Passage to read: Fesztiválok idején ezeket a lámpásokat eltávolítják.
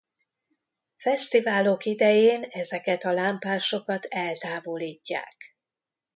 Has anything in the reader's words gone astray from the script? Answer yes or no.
no